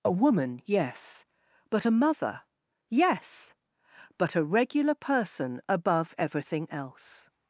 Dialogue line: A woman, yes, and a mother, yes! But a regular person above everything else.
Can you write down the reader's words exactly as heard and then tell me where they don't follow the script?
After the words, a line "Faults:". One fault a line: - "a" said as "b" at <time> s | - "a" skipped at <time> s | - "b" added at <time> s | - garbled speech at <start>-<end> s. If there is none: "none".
A woman, yes, but a mother, yes! But a regular person above everything else.
Faults:
- "and" said as "but" at 1.7 s